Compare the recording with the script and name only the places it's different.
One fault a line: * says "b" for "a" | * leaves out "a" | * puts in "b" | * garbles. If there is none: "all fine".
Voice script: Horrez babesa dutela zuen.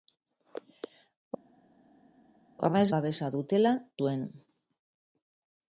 all fine